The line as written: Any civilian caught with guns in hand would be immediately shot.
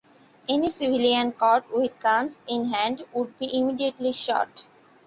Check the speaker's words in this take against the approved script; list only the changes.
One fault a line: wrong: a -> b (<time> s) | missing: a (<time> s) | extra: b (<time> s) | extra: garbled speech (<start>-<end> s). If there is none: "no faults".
no faults